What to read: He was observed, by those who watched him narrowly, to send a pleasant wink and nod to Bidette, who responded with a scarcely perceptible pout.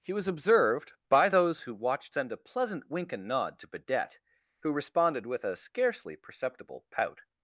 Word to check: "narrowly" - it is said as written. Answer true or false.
false